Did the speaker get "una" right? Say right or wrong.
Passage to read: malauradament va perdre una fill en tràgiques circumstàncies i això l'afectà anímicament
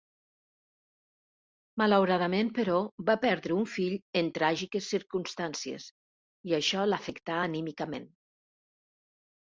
wrong